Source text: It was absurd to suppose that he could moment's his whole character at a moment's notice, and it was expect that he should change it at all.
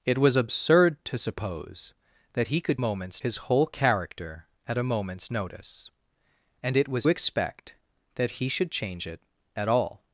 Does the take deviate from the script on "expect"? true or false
false